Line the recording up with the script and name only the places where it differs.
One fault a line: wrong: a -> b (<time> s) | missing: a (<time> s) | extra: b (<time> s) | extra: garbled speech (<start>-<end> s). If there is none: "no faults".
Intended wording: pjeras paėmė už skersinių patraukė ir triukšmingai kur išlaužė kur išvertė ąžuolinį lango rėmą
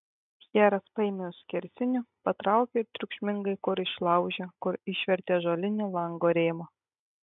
no faults